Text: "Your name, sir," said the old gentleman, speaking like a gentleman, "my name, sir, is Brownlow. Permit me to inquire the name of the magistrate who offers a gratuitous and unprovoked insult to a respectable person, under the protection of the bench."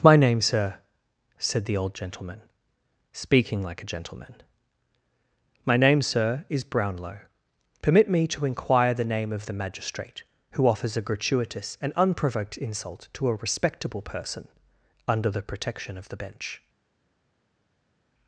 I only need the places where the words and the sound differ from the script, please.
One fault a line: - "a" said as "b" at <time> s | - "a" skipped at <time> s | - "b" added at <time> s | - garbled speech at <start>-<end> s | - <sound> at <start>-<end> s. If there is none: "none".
- "Your" said as "My" at 0.0 s